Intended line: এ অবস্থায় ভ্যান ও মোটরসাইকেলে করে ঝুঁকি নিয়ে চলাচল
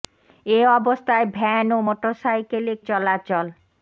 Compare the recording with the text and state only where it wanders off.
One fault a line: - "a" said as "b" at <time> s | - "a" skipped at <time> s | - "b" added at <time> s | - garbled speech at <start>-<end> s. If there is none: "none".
- "করে ঝুঁকি নিয়ে" skipped at 2.7 s